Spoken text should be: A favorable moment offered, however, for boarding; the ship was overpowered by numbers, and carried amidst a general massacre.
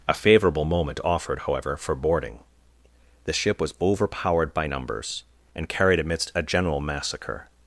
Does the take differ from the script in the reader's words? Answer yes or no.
no